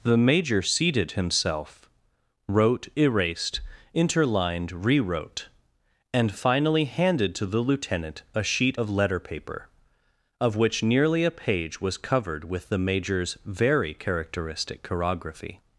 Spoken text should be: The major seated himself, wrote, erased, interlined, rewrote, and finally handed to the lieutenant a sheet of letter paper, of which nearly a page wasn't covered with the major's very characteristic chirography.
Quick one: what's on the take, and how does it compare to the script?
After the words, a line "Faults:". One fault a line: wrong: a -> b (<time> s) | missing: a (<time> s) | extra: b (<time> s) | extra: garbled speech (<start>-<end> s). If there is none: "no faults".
The major seated himself, wrote, erased, interlined, rewrote, and finally handed to the lieutenant a sheet of letter paper, of which nearly a page was covered with the major's very characteristic chirography.
Faults:
wrong: wasn't -> was (11.8 s)